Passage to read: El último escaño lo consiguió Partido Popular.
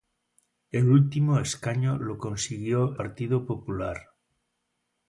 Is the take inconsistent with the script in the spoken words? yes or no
no